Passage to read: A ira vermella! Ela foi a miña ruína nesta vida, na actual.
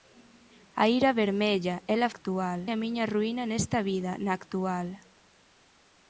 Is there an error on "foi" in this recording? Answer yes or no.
yes